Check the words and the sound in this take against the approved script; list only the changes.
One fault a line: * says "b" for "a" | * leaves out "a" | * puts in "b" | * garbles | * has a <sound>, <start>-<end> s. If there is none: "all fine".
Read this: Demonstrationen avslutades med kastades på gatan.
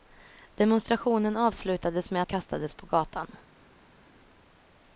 all fine